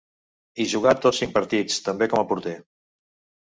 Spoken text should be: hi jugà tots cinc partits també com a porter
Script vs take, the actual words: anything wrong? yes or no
no